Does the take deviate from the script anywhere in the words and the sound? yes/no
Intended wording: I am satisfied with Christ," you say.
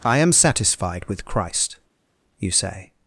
no